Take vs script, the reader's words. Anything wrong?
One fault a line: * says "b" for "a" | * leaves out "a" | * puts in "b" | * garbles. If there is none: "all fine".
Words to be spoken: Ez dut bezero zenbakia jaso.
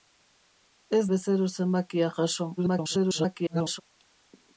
* leaves out "dut"
* garbles